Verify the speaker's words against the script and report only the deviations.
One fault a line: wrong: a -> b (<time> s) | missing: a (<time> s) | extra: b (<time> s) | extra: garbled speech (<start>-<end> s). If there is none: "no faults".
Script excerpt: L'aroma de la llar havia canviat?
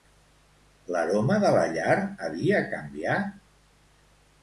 no faults